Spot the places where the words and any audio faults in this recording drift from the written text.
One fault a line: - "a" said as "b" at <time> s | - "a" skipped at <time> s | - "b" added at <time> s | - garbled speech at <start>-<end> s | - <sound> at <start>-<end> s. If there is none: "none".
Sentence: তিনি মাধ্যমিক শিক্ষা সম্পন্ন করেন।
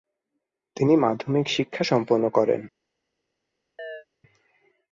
- chirp at 3.8-4.1 s